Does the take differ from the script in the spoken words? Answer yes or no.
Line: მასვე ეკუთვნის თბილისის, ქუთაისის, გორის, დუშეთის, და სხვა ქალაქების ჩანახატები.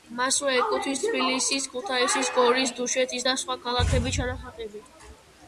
no